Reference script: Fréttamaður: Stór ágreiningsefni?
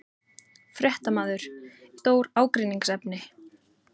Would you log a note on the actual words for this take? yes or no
no